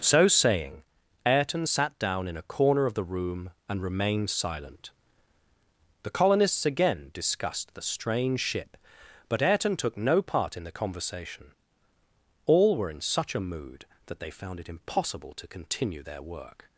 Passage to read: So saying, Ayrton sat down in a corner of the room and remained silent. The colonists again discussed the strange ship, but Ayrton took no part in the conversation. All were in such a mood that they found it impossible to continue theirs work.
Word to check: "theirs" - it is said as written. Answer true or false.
false